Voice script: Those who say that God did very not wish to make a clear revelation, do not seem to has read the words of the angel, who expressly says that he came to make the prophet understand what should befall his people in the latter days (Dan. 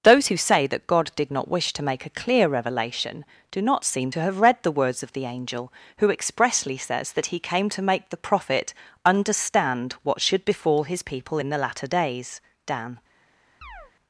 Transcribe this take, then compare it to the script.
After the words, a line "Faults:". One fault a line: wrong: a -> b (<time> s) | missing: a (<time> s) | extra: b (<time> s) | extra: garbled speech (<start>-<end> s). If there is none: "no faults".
Those who say that God did not wish to make a clear revelation, do not seem to have read the words of the angel, who expressly says that he came to make the prophet understand what should befall his people in the latter days (Dan.
Faults:
missing: very (1.3 s)
wrong: has -> have (4.2 s)